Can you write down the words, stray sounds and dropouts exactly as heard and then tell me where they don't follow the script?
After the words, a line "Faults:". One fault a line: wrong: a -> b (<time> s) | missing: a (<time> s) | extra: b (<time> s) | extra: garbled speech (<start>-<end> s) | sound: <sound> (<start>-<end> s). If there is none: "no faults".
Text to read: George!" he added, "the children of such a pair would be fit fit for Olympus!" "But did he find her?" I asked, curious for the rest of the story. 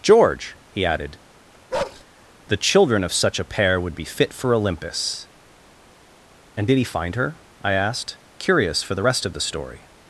George!" he added, "the children of such a pair would be fit for Olympus!" "And did he find her?" I asked, curious for the rest of the story.
Faults:
sound: bark (1.7-2.0 s)
missing: fit (4.3 s)
wrong: But -> And (6.6 s)